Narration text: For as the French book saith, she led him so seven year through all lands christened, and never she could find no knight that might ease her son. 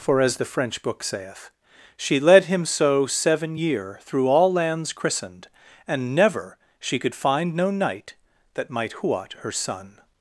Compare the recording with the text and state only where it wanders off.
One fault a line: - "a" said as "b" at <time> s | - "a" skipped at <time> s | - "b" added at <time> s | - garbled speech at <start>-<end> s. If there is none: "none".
- "ease" said as "huat" at 9.0 s